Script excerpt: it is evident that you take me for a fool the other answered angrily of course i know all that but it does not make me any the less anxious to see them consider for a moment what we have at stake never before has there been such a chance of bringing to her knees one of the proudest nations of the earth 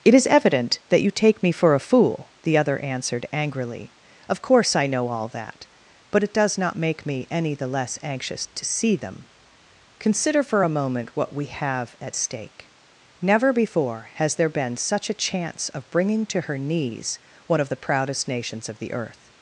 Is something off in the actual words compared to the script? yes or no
no